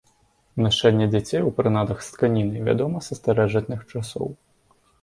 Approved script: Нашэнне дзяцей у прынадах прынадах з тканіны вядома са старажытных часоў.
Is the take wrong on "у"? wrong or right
right